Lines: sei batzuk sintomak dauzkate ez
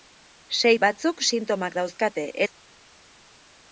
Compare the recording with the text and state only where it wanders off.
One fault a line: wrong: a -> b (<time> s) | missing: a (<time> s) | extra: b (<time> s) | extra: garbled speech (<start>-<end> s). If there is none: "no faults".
no faults